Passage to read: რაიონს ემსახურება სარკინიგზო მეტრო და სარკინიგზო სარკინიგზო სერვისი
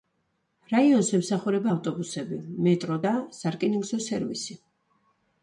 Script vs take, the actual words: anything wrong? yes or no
yes